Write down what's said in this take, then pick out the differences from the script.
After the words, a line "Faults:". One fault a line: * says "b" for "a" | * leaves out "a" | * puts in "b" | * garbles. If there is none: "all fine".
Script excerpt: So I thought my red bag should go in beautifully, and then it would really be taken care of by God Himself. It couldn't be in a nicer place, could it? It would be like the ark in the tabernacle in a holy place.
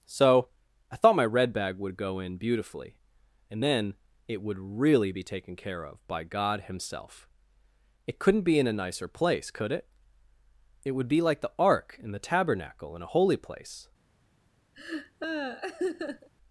So I thought my red bag would go in beautifully, and then it would really be taken care of by God Himself. It couldn't be in a nicer place, could it? It would be like the ark in the tabernacle in a holy place.
Faults:
* says "would" for "should"